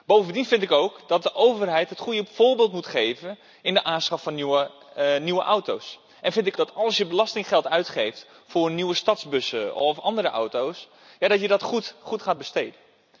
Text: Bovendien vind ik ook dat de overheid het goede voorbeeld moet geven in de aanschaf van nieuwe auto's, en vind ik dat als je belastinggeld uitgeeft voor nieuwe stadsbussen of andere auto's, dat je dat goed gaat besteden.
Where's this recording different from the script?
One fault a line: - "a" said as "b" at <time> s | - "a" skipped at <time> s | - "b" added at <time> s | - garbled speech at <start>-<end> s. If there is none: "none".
none